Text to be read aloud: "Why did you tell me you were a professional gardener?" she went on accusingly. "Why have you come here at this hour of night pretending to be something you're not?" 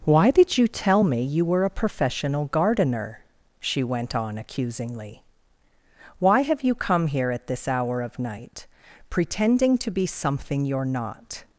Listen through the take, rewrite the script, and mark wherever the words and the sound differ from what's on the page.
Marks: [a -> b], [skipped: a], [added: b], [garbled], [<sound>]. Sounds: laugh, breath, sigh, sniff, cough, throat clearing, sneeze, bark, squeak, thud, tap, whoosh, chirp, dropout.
"Why did you tell me you were a professional gardener?" she went on accusingly. "Why have you come here at this hour of night pretending to be something you're not?"